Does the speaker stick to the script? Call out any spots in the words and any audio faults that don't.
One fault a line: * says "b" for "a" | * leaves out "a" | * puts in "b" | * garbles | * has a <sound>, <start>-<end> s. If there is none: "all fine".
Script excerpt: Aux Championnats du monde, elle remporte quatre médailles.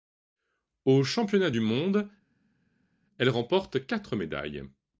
all fine